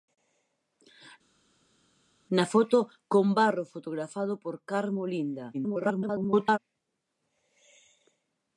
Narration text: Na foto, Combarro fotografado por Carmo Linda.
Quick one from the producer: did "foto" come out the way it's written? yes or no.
yes